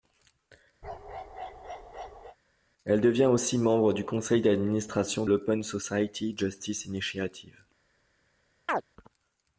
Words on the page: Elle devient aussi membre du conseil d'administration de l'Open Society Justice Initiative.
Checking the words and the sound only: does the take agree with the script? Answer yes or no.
no